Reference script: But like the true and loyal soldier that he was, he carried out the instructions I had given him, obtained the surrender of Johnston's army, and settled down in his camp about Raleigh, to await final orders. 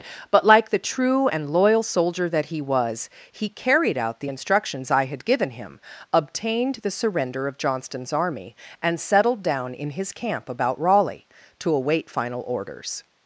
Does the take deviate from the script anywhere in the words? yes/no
no